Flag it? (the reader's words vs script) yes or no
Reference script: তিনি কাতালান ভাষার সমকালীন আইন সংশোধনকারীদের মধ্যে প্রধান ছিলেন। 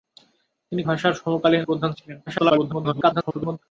yes